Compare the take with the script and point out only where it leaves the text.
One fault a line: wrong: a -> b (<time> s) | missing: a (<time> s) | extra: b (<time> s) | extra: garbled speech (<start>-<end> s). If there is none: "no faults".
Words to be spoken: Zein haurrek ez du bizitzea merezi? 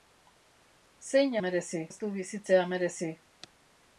wrong: haurrek -> merezi (1.4 s)